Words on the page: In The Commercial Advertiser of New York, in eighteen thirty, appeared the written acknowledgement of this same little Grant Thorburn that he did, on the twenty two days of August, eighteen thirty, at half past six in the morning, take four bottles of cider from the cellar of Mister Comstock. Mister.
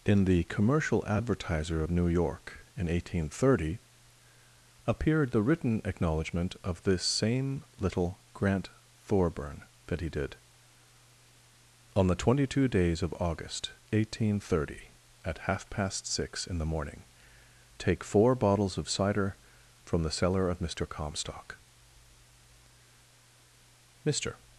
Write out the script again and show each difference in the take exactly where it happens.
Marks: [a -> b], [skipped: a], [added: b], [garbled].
In The Commercial Advertiser of New York, in eighteen thirty, appeared the written acknowledgement of this same little Grant Thorburn that he did, on the twenty two days of August, eighteen thirty, at half past six in the morning, take four bottles of cider from the cellar of Mister Comstock. Mister.